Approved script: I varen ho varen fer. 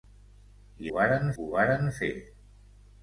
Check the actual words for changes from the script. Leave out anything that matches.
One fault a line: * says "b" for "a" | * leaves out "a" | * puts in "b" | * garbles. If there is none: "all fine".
all fine